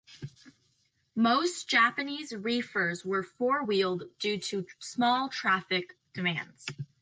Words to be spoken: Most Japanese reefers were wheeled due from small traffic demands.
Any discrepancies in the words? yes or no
yes